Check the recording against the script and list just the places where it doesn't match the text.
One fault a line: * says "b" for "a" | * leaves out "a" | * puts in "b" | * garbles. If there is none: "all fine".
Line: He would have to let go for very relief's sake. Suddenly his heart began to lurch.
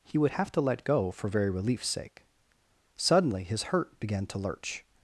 * says "hurt" for "heart"